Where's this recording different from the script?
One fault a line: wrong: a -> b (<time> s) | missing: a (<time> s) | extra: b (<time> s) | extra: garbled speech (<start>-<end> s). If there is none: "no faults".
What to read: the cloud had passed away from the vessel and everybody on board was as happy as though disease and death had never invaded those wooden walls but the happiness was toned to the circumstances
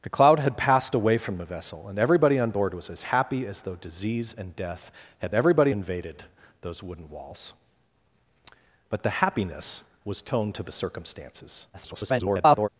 wrong: never -> everybody (5.3 s)
extra: garbled speech (11.7-12.7 s)